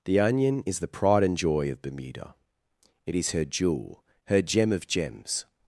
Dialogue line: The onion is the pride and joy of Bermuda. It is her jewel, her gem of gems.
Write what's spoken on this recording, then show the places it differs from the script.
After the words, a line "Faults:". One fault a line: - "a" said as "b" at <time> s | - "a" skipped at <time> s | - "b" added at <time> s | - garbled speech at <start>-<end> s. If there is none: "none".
The onion is the pride and joy of Bermuda. It is her jewel, her gem of gems.
Faults:
none